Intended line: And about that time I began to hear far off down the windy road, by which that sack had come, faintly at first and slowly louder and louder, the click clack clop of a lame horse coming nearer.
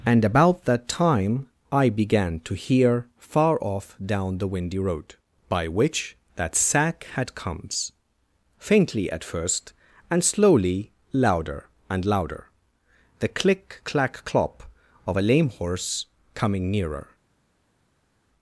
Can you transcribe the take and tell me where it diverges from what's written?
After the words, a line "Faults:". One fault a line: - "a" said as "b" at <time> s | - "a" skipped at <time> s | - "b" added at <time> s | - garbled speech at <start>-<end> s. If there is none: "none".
And about that time I began to hear far off down the windy road, by which that sack had comes, faintly at first and slowly louder and louder, the click clack clop of a lame horse coming nearer.
Faults:
- "come" said as "comes" at 7.3 s